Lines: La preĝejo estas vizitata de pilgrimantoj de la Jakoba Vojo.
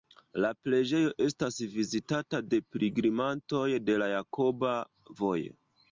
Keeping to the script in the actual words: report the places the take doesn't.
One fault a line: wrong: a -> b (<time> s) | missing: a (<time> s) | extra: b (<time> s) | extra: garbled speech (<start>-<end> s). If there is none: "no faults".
no faults